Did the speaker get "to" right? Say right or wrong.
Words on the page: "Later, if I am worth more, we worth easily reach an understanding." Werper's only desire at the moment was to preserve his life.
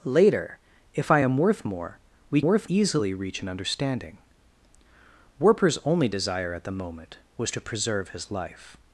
right